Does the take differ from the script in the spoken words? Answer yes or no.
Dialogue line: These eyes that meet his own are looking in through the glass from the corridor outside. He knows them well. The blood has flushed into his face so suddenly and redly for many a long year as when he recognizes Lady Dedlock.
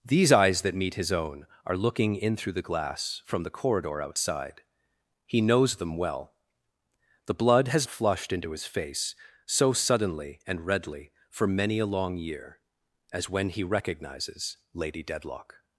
no